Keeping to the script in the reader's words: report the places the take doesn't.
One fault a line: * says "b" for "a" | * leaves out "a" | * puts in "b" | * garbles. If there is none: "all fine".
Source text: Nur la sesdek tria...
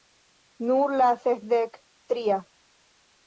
all fine